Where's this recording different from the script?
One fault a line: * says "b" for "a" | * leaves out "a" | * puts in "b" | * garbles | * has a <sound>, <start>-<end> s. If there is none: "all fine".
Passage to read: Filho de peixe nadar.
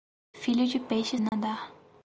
* has a dropout, 1.3-1.3 s